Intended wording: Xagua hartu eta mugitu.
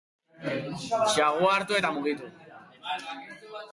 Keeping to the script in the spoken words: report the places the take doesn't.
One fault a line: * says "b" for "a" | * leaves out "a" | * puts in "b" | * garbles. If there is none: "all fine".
all fine